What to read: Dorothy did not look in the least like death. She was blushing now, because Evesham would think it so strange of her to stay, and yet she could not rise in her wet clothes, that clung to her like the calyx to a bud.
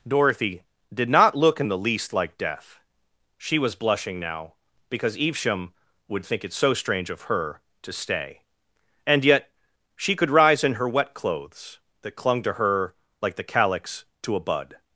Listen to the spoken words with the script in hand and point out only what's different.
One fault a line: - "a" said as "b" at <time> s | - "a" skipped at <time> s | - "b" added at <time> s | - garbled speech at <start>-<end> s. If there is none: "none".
- "not" skipped at 10.3 s